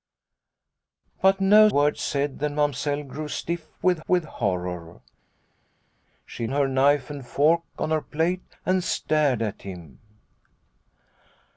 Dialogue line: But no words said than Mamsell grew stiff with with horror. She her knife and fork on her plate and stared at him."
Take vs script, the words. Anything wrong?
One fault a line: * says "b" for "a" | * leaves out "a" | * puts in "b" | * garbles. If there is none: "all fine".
all fine